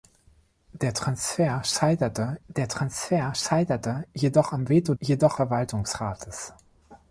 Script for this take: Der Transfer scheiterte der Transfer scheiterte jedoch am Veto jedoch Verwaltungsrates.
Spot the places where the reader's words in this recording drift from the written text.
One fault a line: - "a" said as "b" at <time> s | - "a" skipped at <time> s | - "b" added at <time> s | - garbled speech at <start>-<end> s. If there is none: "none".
none